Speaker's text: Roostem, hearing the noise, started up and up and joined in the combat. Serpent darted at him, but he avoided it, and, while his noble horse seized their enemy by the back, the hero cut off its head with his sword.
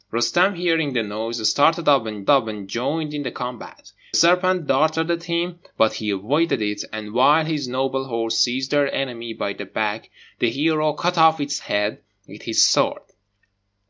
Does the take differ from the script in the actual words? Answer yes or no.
no